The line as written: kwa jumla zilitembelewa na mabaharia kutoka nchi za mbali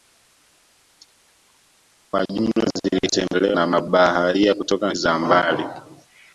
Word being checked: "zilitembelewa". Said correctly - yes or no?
yes